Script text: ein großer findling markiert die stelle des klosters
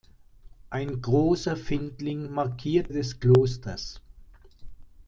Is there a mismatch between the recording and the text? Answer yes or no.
yes